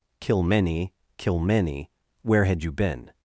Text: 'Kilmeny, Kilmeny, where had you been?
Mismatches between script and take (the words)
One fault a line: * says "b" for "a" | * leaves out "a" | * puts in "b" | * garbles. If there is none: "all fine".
all fine